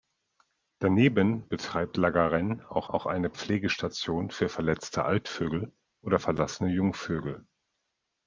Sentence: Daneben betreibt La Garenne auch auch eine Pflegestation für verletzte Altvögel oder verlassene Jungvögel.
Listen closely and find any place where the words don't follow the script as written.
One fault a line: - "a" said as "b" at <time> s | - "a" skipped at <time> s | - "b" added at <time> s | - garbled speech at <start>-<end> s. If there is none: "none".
none